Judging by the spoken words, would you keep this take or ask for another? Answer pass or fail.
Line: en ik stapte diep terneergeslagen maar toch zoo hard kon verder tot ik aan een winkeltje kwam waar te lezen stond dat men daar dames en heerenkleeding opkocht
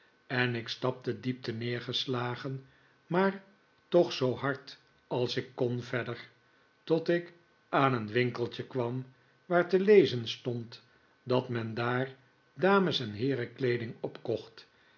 fail